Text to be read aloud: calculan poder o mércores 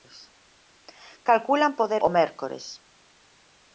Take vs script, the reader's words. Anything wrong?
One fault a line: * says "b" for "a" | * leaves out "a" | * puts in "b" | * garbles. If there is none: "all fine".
all fine